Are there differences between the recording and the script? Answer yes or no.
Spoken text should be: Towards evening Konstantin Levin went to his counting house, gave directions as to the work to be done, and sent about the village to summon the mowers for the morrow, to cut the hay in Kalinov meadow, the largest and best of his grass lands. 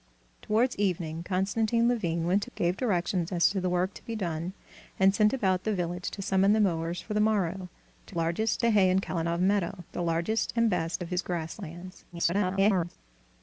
yes